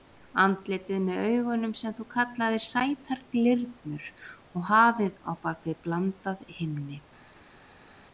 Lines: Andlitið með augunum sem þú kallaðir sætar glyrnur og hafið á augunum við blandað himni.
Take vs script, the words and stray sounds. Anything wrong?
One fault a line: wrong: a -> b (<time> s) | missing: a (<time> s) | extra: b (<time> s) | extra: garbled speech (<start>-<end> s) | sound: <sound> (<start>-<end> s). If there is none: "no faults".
wrong: augunum -> bak (5.5 s)